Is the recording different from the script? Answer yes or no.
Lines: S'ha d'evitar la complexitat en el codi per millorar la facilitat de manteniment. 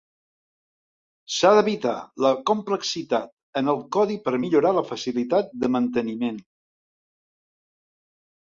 no